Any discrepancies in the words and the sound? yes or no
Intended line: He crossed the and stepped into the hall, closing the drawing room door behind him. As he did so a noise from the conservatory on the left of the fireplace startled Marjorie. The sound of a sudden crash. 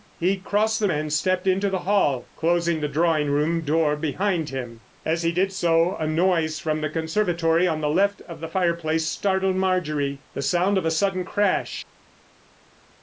no